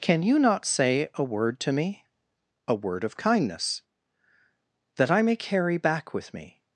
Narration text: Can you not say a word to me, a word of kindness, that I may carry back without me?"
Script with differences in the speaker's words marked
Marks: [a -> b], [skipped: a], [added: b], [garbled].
Can you not say a word to me, a word of kindness, that I may carry back [without -> with] me?"